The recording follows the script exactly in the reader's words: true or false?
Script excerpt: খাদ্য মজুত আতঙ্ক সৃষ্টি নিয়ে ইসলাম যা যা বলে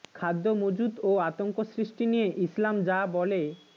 false